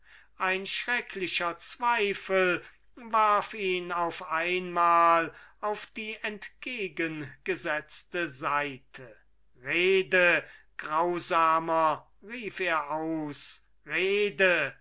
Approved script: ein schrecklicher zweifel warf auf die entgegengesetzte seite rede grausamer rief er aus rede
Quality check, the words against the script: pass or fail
fail